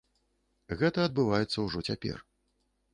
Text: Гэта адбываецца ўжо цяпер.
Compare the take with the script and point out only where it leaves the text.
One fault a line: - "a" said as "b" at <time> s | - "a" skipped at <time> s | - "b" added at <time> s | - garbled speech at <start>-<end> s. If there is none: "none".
none